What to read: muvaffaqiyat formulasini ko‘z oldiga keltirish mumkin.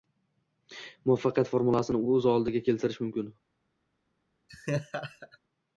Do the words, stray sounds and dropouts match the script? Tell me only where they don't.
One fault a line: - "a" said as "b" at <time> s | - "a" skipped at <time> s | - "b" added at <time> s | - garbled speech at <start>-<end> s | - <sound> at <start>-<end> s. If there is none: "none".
- laugh at 4.5-5.4 s